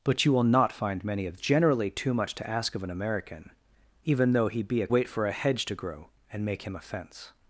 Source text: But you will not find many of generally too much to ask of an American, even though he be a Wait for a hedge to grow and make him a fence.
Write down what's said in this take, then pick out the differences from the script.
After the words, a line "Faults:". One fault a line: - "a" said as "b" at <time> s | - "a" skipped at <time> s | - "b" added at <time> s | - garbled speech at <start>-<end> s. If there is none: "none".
But you will not find many of generally too much to ask of an American, even though he be a Wait for a hedge to grow and make him a fence.
Faults:
none